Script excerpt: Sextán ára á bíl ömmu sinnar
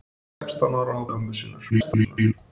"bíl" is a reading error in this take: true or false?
true